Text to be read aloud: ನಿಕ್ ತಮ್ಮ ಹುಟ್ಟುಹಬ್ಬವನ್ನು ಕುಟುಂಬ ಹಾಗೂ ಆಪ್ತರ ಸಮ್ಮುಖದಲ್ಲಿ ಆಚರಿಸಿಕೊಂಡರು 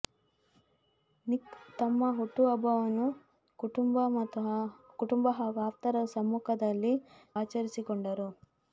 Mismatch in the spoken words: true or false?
false